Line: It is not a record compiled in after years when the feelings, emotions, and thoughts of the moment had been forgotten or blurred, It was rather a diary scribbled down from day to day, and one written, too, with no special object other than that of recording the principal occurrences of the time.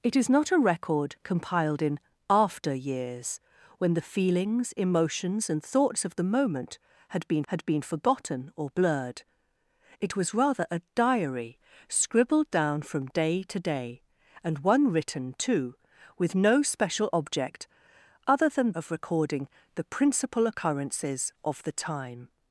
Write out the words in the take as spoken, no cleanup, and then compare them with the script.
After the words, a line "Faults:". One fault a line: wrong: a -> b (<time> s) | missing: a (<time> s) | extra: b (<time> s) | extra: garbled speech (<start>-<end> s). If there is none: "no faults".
It is not a record compiled in after years when the feelings, emotions, and thoughts of the moment had been had been forgotten or blurred, It was rather a diary scribbled down from day to day, and one written, too, with no special object other than of recording the principal occurrences of the time.
Faults:
extra: had been (7.5 s)
missing: that (18.7 s)